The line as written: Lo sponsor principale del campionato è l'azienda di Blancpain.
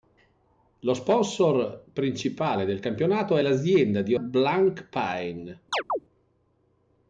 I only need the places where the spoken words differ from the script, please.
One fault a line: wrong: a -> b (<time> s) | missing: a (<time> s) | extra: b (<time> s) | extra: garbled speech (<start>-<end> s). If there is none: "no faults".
no faults